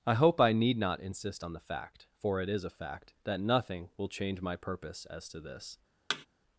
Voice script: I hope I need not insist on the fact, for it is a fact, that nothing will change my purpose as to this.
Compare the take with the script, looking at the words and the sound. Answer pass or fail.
fail